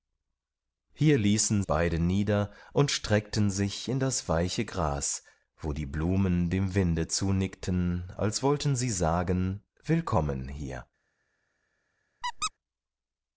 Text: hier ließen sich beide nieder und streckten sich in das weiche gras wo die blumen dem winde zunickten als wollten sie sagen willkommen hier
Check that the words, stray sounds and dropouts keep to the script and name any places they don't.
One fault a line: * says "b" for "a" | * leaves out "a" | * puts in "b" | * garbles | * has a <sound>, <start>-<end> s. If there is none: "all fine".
* leaves out "sich"
* has a squeak, 12.2-12.5 s